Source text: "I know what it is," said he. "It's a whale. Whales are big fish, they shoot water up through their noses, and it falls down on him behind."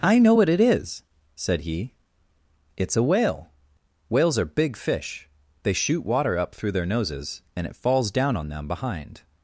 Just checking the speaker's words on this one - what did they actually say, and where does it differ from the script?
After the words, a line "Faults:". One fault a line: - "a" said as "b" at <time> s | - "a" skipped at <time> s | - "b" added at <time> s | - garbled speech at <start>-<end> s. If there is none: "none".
"I know what it is," said he. "It's a whale. Whales are big fish, they shoot water up through their noses, and it falls down on them behind."
Faults:
- "him" said as "them" at 8.5 s